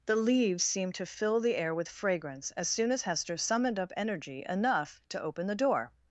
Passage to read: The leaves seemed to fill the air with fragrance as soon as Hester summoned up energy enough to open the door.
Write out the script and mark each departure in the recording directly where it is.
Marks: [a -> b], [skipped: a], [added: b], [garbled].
The leaves seemed to fill the air with fragrance as soon as Hester summoned up energy enough to open the door.